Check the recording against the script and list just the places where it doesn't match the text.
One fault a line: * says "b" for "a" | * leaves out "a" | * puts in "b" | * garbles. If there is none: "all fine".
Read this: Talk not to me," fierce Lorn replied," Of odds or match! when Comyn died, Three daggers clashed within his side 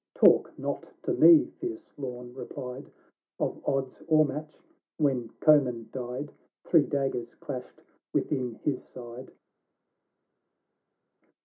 all fine